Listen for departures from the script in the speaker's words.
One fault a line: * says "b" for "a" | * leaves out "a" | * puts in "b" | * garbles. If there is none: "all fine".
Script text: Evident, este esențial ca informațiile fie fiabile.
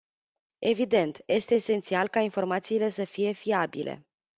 * puts in "să"